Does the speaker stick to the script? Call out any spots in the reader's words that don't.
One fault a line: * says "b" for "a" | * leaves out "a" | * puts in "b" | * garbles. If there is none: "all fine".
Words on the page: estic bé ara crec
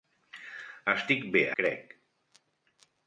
* leaves out "ara"